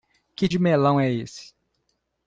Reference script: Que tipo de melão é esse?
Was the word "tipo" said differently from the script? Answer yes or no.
yes